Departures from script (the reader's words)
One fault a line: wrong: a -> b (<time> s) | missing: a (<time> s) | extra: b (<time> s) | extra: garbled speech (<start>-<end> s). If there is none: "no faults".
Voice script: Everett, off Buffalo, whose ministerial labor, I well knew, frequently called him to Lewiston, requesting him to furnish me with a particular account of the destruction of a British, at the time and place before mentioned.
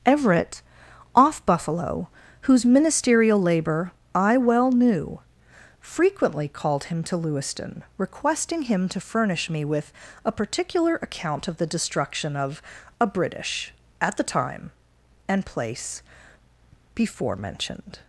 no faults